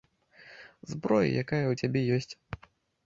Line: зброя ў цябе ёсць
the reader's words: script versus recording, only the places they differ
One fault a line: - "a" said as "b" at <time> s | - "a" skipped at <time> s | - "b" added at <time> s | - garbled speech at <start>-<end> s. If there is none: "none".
- "якая" added at 1.4 s